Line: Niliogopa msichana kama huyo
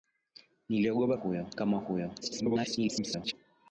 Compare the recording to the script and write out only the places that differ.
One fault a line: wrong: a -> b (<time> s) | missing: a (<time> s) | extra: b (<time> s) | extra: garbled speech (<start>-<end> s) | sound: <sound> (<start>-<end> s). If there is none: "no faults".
wrong: msichana -> huyo (1.1 s)
extra: garbled speech (2.2-3.3 s)